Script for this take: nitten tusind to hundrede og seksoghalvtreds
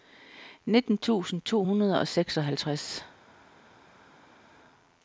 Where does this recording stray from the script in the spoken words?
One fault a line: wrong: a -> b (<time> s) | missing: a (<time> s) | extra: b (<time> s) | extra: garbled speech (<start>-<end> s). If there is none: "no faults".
no faults